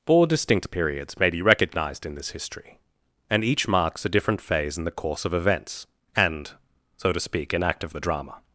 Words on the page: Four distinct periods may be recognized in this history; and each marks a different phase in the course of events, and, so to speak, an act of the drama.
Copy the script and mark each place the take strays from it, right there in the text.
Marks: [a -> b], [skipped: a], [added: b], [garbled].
Four distinct periods may be recognized in this history; and each marks a different phase in the course of events, and, so to speak, an act of the drama.